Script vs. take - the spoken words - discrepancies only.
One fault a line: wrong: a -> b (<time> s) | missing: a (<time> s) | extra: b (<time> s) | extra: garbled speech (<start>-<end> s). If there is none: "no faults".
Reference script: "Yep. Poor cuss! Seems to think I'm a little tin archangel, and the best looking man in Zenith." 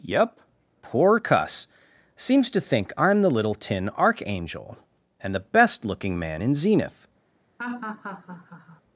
wrong: a -> the (3.2 s)